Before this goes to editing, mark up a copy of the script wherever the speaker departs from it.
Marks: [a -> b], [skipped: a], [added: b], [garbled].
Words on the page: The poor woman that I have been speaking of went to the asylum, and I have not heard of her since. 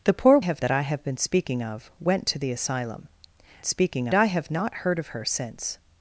The poor [woman -> have] that I have been speaking of went to the asylum, [and -> speaking] I have not heard of her since.